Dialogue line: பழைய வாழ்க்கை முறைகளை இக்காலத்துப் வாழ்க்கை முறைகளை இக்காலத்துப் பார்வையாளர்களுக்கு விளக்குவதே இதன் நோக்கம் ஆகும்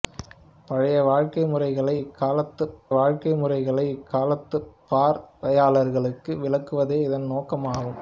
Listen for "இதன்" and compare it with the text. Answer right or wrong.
right